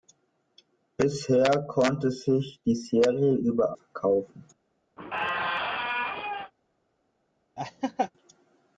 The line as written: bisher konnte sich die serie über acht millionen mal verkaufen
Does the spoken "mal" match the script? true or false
false